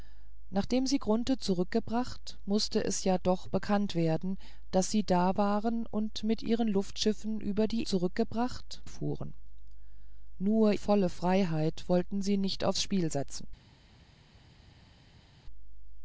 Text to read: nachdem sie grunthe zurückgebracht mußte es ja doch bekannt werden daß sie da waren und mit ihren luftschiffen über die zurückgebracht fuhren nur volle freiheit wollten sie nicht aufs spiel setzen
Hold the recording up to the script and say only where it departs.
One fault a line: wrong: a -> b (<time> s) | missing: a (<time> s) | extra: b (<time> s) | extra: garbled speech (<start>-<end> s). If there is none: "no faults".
no faults